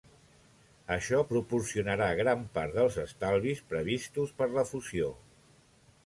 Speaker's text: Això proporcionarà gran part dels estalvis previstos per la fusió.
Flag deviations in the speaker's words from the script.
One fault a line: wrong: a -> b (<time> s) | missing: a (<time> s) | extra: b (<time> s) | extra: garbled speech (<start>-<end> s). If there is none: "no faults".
no faults